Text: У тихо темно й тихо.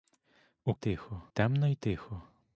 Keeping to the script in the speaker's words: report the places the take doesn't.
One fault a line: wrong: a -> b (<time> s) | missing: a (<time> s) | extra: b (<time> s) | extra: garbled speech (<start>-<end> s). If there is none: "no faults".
no faults